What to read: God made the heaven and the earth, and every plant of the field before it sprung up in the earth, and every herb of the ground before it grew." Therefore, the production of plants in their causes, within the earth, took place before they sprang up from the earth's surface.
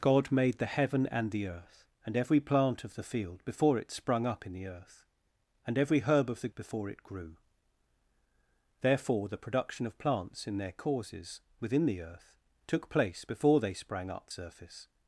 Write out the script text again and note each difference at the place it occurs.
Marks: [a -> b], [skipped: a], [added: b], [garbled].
God made the heaven and the earth, and every plant of the field before it sprung up in the earth, and every herb of the [skipped: ground] before it grew." Therefore, the production of plants in their causes, within the earth, took place before they sprang up [skipped: from the earth's] surface.